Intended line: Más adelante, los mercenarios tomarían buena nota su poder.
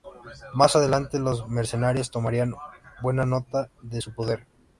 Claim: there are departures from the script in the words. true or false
true